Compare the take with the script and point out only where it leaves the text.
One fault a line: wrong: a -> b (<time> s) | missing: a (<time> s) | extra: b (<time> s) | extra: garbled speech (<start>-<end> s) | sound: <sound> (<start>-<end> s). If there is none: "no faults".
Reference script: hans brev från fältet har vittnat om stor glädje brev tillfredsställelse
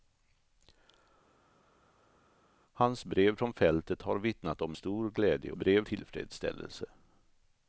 no faults